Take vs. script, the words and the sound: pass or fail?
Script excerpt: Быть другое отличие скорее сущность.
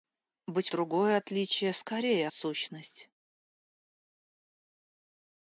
pass